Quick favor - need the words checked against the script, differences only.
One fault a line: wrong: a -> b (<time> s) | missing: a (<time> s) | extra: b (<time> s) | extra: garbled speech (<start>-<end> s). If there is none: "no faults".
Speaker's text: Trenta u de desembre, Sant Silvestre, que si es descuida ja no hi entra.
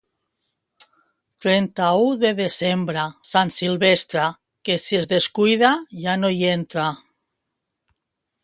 no faults